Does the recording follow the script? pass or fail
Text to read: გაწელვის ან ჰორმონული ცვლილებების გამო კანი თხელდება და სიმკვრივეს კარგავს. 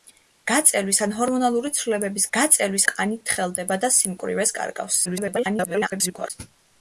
fail